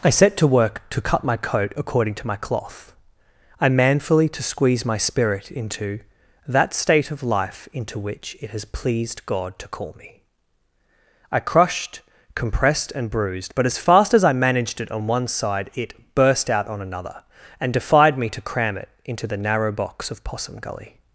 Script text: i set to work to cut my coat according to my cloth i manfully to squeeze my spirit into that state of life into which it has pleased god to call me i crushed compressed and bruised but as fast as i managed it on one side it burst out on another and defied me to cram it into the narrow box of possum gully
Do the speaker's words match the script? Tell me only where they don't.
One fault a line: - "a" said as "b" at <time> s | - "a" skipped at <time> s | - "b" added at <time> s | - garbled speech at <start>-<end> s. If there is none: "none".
none